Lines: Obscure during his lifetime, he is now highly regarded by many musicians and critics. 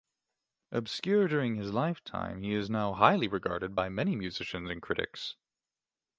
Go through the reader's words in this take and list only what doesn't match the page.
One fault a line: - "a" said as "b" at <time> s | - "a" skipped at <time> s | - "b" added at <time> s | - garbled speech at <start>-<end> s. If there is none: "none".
none